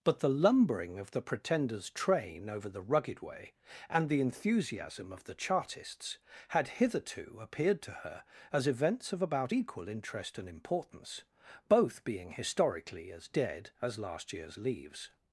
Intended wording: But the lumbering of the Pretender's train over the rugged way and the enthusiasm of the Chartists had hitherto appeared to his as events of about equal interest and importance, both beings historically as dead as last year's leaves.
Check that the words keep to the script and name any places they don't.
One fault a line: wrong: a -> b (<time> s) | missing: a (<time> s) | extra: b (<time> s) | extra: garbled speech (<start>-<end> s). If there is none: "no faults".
wrong: his -> her (7.9 s)
wrong: beings -> being (12.0 s)